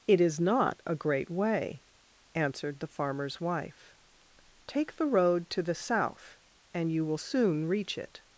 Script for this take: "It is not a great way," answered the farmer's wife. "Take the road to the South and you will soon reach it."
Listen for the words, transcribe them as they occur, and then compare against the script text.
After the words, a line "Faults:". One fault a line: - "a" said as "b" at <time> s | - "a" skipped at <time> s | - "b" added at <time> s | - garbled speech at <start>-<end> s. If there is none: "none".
"It is not a great way," answered the farmer's wife. "Take the road to the South and you will soon reach it."
Faults:
none